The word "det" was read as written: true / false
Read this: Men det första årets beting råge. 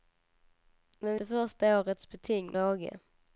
true